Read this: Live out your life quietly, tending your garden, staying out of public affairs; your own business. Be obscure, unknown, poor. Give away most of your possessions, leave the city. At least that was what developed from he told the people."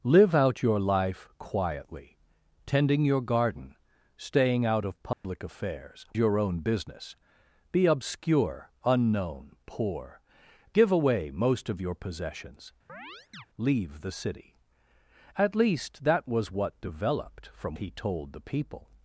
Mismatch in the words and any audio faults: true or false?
true